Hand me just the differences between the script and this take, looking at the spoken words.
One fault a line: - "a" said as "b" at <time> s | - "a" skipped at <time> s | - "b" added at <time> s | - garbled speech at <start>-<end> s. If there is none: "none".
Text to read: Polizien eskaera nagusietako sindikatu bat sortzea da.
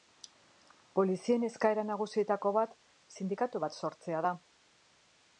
- "bat" added at 2.6 s